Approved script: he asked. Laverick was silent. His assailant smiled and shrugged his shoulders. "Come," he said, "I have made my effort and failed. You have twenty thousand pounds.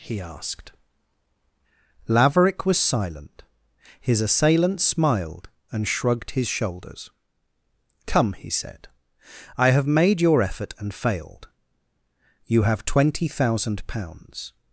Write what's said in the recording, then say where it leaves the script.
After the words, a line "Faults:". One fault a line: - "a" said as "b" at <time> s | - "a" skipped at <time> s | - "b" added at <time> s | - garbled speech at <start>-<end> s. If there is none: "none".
he asked. Laverick was silent. His assailant smiled and shrugged his shoulders. "Come," he said, "I have made your effort and failed. You have twenty thousand pounds.
Faults:
- "my" said as "your" at 10.2 s